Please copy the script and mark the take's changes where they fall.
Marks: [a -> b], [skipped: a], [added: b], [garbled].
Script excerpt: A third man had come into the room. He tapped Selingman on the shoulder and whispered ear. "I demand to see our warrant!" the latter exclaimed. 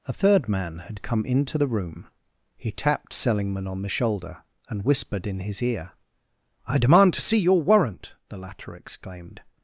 A third man had come into the room. He tapped Selingman on the shoulder and whispered [added: in his] ear. "I demand to see [our -> your] warrant!" the latter exclaimed.